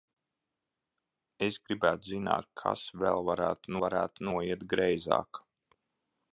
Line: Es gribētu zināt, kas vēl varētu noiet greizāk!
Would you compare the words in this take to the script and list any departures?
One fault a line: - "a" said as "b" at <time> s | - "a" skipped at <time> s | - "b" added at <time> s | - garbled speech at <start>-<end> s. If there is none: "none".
- "varētu" added at 3.8 s